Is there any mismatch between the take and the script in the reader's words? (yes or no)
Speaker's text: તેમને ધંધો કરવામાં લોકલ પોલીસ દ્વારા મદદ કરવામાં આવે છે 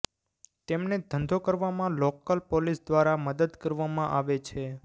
no